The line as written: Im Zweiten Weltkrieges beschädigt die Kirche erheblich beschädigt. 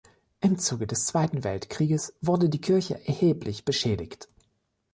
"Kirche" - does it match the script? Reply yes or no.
yes